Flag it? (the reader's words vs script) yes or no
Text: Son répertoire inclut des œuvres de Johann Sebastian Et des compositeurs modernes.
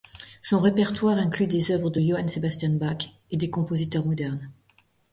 yes